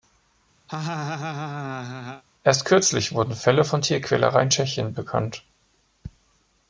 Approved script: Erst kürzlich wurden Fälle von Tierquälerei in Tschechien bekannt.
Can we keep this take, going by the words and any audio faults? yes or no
no